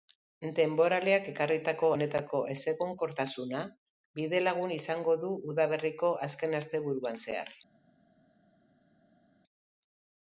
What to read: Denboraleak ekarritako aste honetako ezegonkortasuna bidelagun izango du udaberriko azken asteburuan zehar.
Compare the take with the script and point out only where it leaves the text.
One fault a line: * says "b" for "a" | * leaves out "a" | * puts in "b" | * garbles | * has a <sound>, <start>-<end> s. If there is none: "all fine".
* leaves out "aste"